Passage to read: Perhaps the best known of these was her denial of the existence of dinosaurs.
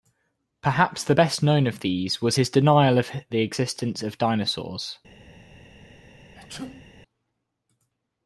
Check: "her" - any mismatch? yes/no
yes